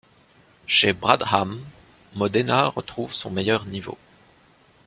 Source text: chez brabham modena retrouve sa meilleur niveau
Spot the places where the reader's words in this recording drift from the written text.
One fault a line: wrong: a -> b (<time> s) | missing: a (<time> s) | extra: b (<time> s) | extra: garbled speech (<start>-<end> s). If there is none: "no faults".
wrong: sa -> son (3.1 s)